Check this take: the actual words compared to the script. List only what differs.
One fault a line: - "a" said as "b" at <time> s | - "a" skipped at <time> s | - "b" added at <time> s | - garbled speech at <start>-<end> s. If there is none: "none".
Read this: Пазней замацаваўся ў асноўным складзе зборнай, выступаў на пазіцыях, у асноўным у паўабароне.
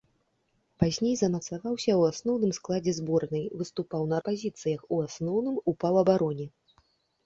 none